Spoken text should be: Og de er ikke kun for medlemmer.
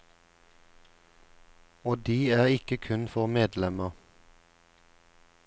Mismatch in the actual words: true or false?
false